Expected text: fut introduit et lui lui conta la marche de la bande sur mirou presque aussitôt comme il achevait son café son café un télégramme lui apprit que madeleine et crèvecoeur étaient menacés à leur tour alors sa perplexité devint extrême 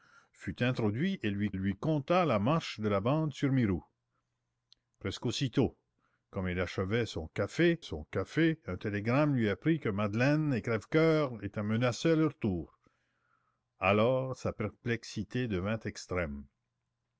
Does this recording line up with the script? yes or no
yes